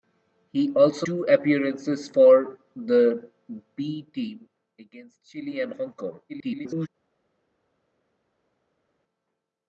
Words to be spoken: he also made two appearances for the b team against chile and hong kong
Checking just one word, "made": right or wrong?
wrong